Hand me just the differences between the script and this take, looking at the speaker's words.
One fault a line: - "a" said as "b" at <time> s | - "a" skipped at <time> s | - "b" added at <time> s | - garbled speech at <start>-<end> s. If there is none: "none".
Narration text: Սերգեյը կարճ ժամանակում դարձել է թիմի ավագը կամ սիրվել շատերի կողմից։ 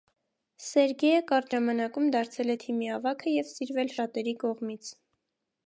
- "կամ" said as "և" at 3.4 s